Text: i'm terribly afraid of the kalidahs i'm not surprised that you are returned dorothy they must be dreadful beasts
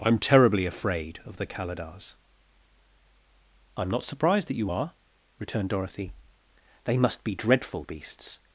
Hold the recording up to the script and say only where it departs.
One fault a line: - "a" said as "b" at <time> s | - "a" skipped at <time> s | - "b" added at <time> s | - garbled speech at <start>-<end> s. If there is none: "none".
none